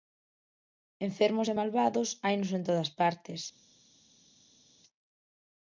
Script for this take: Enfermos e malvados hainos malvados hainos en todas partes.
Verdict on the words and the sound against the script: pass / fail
fail